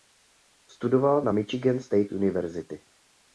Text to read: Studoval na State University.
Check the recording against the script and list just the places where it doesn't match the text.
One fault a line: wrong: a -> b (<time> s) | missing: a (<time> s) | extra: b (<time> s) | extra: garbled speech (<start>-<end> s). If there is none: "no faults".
extra: Michigan (1.3 s)